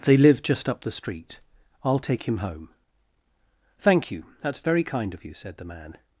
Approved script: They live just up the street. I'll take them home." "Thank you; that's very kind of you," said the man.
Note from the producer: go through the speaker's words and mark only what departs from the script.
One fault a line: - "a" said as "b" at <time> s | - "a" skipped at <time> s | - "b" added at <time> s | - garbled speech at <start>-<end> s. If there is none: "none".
- "them" said as "him" at 2.2 s